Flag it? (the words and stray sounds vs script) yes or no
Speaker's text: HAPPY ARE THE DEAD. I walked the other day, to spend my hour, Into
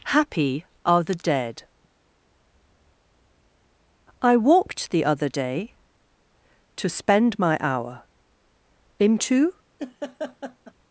yes